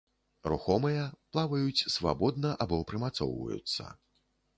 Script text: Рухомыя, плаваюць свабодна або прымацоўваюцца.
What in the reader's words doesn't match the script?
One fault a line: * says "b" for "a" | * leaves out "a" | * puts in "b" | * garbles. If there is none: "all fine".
all fine